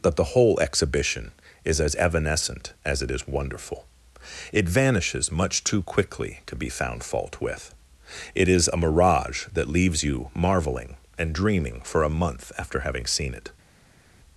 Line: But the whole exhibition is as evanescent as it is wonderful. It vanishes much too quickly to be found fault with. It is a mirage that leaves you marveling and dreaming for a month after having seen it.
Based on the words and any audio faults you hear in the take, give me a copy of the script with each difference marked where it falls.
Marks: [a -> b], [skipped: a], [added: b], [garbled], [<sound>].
[But -> That] the whole exhibition is as evanescent as it is wonderful. It vanishes much too quickly to be found fault with. It is a mirage that leaves you marveling and dreaming for a month after having seen it.